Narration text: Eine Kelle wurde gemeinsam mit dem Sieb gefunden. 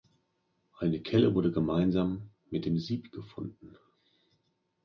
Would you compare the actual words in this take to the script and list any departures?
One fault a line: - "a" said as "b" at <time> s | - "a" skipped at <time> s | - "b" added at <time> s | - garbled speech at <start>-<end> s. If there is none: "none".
none